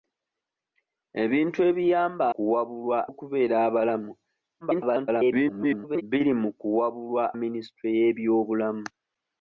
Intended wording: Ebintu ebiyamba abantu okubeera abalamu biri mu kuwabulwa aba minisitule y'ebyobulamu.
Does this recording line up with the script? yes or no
no